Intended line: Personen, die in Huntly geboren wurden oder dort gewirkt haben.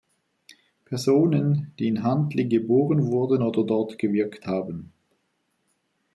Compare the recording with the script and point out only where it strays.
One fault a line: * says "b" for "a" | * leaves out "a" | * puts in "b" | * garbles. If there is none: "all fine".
all fine